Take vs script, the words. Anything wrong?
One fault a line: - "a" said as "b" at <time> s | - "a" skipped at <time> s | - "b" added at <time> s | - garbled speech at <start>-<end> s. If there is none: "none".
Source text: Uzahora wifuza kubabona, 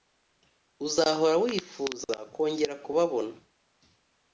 - "kongera" added at 2.3 s